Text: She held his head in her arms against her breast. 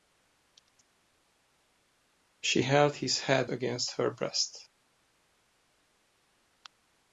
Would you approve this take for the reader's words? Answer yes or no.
no